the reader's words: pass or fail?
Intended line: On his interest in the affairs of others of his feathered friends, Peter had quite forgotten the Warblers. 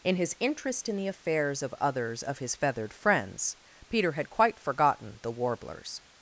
fail